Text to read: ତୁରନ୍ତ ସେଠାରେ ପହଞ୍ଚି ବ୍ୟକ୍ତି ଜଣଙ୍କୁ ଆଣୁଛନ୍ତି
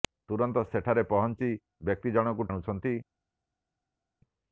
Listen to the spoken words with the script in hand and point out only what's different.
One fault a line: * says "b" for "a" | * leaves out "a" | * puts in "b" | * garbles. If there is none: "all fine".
all fine